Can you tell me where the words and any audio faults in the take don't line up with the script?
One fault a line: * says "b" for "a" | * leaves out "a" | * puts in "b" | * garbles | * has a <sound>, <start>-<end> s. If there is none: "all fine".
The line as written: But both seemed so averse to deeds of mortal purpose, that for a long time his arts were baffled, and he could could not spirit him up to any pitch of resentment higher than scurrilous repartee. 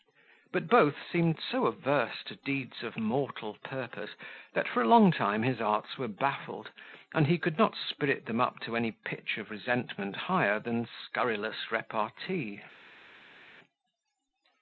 * leaves out "could"
* says "them" for "him"